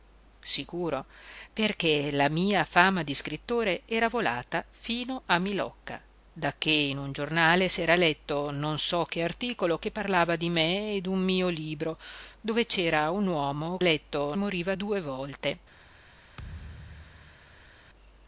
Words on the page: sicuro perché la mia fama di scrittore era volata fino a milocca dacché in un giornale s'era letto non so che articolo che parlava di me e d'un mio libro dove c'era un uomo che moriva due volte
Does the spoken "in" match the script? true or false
true